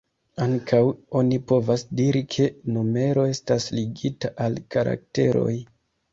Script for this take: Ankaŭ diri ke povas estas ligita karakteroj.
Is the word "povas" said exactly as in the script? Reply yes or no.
no